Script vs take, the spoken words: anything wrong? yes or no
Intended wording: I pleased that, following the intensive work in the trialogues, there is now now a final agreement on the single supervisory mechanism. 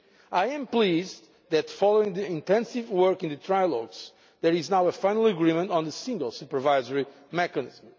yes